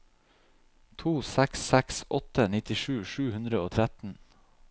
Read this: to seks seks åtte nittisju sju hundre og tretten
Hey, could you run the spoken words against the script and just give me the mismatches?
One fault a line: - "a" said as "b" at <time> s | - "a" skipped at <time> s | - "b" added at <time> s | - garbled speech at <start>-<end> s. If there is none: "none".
none